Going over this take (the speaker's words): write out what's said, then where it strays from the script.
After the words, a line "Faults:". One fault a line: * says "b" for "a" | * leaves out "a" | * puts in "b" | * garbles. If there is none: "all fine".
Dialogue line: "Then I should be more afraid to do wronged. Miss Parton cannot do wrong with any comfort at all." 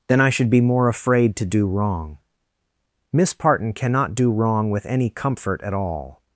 "Then I should be more afraid to do wrong. Miss Parton cannot do wrong with any comfort at all."
Faults:
* says "wrong" for "wronged"